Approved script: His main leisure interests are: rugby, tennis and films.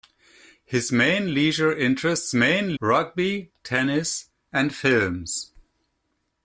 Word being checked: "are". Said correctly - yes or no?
no